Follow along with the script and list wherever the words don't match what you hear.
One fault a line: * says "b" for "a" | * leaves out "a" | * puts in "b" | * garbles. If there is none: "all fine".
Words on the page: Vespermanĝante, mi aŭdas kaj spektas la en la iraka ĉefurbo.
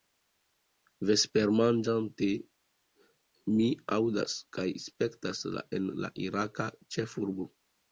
all fine